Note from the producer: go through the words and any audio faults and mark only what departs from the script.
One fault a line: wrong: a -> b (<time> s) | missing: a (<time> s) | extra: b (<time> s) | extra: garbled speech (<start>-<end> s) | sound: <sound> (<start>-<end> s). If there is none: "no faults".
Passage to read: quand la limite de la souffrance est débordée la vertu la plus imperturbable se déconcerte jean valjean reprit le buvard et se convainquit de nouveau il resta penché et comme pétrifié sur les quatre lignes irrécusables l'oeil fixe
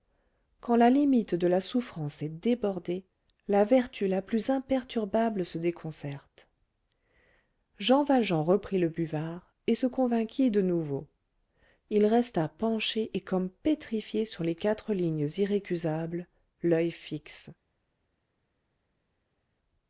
no faults